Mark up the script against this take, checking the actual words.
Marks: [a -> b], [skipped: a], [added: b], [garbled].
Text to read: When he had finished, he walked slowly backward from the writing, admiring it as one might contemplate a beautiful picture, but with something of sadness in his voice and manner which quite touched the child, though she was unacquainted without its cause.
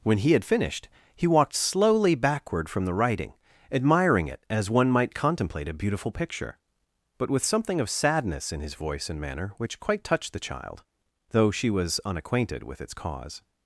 When he had finished, he walked slowly backward from the writing, admiring it as one might contemplate a beautiful picture, but with something of sadness in his voice and manner which quite touched the child, though she was unacquainted [without -> with] its cause.